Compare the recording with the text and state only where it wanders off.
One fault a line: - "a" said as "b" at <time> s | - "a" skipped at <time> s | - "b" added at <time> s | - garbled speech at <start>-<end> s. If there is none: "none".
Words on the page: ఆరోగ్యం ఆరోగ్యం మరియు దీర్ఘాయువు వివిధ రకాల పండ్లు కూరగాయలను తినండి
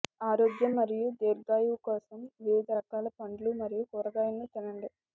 - "ఆరోగ్యం" skipped at 0.7 s
- "కోసం" added at 1.8 s
- "మరియు" added at 3.6 s